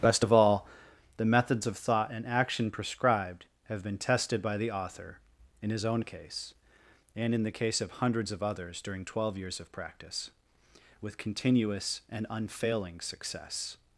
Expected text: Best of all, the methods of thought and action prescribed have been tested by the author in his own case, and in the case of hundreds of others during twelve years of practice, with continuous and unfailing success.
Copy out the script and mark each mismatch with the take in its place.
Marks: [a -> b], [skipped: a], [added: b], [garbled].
Best of all, the methods of thought and action prescribed have been tested by the author in his own case, and in the case of hundreds of others during twelve years of practice, with continuous and unfailing success.